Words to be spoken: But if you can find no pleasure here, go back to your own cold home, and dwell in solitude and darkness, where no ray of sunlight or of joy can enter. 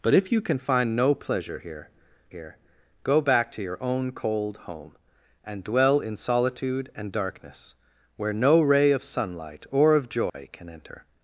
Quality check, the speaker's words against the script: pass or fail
fail